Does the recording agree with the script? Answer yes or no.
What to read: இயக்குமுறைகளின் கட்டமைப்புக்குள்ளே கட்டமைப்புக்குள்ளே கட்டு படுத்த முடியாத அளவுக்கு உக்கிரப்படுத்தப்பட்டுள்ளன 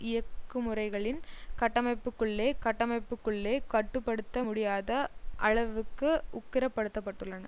yes